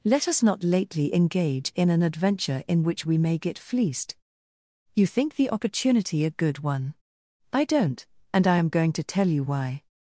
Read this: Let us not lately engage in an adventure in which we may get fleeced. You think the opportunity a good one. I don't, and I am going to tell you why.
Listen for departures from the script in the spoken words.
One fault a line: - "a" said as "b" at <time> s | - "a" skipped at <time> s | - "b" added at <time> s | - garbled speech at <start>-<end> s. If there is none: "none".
none